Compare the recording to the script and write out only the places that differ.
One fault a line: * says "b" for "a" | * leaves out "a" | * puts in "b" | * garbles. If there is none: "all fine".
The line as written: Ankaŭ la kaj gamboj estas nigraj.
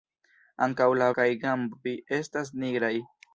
all fine